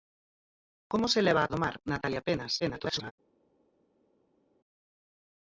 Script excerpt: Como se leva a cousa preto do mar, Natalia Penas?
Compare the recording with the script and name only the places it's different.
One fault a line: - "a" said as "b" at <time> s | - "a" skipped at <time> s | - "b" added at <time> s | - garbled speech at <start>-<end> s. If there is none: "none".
- "cousa preto" skipped at 1.5 s
- garbled speech at 2.6-3.1 s